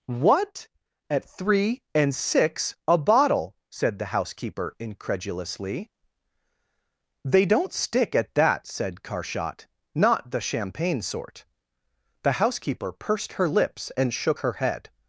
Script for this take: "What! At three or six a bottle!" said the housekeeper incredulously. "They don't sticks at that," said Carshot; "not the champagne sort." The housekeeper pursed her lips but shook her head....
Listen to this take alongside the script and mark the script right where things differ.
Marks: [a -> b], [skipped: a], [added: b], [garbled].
"What! At three [or -> and] six a bottle!" said the housekeeper incredulously. "They don't [sticks -> stick] at that," said Carshot; "not the champagne sort." The housekeeper pursed her lips [but -> and] shook her head....